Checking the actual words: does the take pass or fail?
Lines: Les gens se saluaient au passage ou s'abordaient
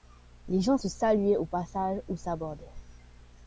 pass